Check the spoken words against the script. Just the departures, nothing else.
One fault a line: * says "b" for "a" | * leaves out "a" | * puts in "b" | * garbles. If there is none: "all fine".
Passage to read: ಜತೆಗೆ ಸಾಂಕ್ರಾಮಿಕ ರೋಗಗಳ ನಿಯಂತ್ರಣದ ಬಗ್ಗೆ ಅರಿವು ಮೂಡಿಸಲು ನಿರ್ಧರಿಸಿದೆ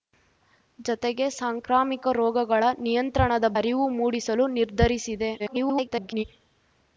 * leaves out "ಬಗ್ಗೆ"
* garbles